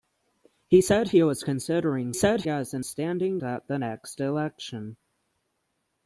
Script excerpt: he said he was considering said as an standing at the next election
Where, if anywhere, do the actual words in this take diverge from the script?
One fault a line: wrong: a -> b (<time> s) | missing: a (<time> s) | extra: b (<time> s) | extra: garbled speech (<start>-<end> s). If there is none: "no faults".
no faults